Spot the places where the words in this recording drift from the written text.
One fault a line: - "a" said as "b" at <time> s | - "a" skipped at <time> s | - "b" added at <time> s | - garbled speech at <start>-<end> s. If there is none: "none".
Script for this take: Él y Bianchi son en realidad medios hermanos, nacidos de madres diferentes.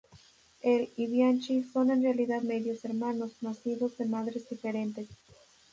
none